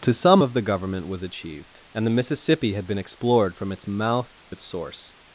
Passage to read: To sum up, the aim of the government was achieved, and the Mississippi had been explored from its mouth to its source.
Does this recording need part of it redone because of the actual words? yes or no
yes